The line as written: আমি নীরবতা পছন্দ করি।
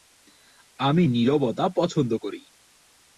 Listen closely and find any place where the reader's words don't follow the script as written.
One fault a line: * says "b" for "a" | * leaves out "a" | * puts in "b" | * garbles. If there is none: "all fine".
all fine